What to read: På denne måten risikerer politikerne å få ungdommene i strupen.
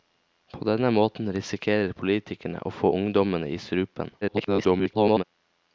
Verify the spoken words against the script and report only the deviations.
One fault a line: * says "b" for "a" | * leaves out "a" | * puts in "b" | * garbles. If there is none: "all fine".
* garbles